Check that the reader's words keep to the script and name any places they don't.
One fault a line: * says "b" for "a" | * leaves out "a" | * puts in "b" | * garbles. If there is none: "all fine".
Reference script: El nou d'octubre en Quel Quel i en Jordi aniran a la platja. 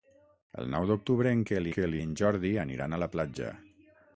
all fine